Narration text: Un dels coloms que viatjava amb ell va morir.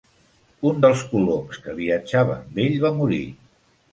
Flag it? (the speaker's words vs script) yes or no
no